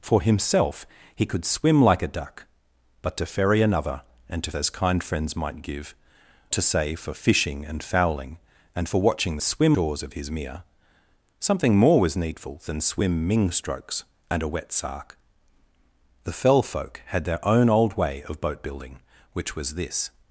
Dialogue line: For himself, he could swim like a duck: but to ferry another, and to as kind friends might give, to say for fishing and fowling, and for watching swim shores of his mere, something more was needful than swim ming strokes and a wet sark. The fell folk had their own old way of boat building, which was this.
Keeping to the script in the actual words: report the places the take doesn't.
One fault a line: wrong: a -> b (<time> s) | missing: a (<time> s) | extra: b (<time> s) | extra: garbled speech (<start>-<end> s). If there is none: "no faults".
no faults